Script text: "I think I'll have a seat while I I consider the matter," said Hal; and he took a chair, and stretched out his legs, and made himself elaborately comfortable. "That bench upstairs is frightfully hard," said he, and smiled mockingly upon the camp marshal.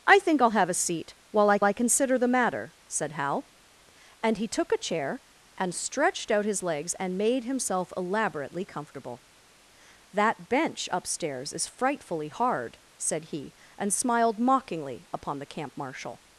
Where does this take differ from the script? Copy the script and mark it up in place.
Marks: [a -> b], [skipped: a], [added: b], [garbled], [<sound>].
"I think I'll have a seat while I I consider the matter," said Hal; and he took a chair, and stretched out his legs, and made himself elaborately comfortable. "That bench upstairs is frightfully hard," said he, and smiled mockingly upon the camp marshal.